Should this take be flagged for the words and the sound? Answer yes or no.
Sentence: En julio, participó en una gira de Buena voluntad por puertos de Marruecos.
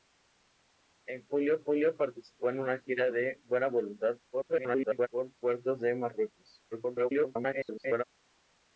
yes